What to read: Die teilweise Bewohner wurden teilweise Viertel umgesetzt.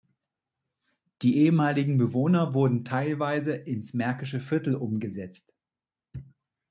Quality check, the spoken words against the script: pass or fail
fail